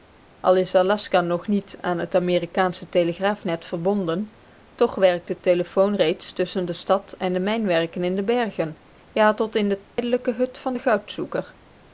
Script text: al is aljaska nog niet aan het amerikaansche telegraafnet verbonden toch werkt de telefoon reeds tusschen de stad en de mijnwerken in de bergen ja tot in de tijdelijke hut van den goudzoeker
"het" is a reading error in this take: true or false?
false